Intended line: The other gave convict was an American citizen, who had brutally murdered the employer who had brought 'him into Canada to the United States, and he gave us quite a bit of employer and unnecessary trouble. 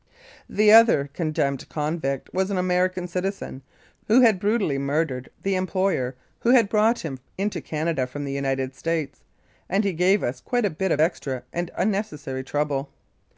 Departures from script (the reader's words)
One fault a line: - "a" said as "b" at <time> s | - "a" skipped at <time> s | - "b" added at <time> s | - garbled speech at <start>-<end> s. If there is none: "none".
- "gave" said as "condemned" at 1.1 s
- "to" said as "from" at 8.1 s
- "employer" said as "extra" at 11.0 s